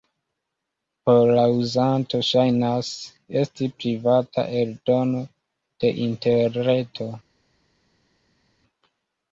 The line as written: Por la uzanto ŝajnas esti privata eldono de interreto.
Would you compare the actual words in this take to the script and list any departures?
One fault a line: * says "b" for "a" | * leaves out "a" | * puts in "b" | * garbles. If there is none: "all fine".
all fine